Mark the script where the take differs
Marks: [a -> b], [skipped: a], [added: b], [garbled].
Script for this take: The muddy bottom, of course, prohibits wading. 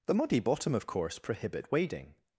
The muddy bottom, of course, [prohibits -> prohibit] wading.